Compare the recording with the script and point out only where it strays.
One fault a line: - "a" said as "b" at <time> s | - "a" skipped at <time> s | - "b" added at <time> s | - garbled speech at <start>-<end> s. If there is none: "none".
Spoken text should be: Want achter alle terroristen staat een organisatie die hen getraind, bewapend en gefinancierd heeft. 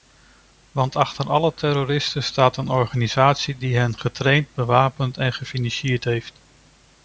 none